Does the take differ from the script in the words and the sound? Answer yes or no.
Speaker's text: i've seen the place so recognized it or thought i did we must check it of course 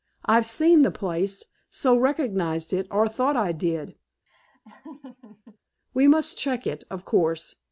yes